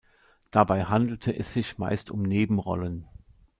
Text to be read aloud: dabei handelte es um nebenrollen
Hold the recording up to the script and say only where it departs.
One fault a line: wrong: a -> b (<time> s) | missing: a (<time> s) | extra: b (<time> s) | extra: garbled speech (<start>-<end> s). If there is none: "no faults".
extra: sich meist (1.5 s)